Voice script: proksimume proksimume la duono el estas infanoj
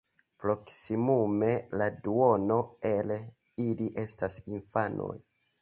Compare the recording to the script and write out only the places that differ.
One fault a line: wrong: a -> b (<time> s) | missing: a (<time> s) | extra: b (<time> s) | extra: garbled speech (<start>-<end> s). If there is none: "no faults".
missing: proksimume (1.5 s)
extra: ili (3.7 s)